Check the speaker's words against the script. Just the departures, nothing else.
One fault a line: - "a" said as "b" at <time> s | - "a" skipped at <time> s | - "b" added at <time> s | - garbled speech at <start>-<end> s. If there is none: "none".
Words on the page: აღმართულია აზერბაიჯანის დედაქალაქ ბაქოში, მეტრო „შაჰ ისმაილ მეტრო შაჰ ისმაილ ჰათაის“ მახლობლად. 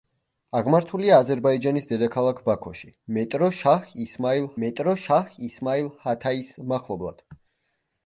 none